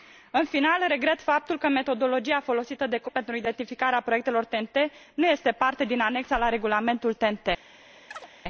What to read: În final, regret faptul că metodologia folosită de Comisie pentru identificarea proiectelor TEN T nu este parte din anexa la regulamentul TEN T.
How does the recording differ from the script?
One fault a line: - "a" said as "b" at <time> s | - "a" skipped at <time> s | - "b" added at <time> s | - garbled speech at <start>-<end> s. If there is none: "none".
none